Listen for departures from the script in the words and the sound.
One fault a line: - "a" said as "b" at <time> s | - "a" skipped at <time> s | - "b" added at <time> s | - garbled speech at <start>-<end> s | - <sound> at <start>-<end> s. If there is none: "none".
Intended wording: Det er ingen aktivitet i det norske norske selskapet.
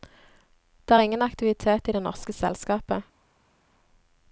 - "norske" skipped at 2.3 s